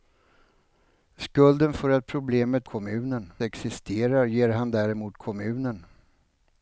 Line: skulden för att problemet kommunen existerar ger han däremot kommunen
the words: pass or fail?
pass